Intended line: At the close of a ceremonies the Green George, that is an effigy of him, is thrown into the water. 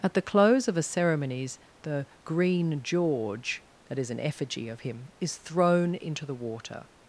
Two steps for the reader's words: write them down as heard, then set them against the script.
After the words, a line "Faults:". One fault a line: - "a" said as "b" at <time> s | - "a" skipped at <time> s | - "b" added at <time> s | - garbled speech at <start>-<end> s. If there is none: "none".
At the close of a ceremonies the Green George, that is an effigy of him, is thrown into the water.
Faults:
none